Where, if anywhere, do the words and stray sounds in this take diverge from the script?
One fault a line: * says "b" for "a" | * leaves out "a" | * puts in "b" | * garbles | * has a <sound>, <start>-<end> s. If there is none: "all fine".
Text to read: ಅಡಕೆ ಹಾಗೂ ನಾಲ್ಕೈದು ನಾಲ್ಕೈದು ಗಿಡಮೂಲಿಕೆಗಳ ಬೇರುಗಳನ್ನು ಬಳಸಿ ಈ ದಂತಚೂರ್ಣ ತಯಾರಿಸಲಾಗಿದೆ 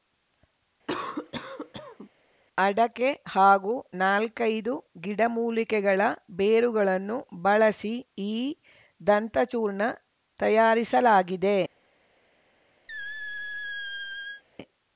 * has a cough, 0.9-2.1 s
* leaves out "ನಾಲ್ಕೈದು"
* has a squeak, 12.9-14.4 s